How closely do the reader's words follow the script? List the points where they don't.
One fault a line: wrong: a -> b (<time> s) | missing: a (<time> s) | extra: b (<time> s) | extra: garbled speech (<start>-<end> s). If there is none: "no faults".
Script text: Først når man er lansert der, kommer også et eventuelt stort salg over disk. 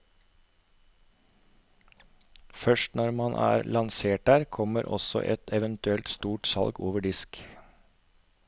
no faults